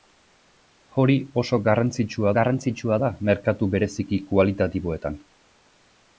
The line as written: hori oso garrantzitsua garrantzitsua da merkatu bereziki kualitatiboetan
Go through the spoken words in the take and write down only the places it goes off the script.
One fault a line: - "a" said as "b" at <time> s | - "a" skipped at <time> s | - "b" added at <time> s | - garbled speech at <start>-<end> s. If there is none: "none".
none